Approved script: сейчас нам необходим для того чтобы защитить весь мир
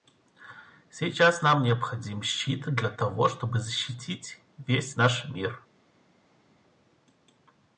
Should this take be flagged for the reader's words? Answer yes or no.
yes